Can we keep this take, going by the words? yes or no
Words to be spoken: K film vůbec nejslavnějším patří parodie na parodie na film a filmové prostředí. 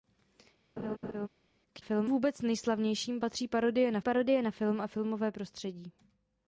yes